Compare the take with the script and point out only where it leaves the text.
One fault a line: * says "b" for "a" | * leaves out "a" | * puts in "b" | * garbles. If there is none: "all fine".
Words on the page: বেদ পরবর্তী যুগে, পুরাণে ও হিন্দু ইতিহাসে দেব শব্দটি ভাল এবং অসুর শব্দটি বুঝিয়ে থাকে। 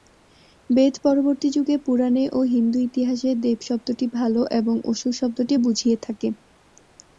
all fine